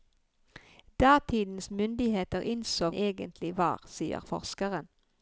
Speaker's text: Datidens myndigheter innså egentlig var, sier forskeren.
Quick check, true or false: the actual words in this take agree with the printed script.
true